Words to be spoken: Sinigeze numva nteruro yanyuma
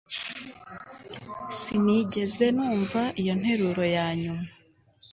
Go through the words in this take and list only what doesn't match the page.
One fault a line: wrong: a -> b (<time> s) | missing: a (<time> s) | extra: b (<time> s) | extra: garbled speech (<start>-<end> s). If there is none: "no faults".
extra: iyo (3.2 s)